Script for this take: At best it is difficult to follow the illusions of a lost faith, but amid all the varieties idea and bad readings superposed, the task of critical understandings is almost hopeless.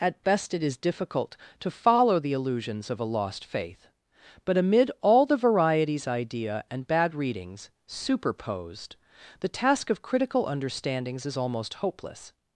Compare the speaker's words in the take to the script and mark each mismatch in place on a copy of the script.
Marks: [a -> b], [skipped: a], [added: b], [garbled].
At best it is difficult to follow the illusions of a lost faith, but amid all the varieties idea and bad readings superposed, the task of critical understandings is almost hopeless.